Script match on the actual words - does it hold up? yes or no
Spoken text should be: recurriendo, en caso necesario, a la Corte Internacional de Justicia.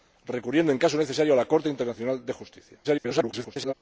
no